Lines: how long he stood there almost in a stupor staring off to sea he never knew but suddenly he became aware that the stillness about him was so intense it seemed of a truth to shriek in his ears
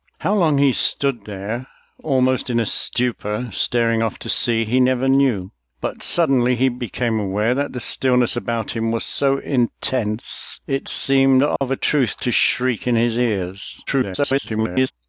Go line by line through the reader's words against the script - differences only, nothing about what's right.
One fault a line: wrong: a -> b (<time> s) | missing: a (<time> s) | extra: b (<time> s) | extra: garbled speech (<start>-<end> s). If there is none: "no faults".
extra: garbled speech (13.9-14.9 s)